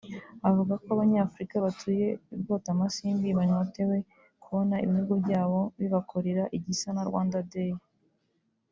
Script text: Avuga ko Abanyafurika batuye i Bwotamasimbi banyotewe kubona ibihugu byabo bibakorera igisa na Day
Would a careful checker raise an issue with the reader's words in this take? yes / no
yes